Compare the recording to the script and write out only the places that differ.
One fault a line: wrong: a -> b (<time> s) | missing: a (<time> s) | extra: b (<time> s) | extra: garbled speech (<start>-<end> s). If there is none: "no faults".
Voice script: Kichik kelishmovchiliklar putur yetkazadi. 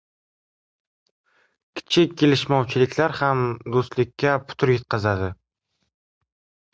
extra: ham do‘stlikka (3.2 s)